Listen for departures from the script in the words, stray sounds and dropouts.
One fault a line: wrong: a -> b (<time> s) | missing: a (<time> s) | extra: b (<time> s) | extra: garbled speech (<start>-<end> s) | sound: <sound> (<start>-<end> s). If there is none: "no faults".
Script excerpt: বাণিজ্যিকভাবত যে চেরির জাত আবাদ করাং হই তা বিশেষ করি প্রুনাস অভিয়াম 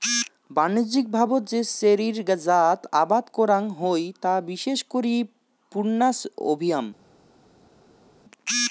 no faults